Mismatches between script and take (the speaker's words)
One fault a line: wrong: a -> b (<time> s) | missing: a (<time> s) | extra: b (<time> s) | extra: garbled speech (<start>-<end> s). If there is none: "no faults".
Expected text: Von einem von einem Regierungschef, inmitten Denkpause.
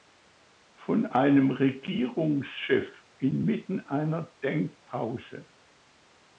missing: von einem (1.5 s)
extra: einer (3.8 s)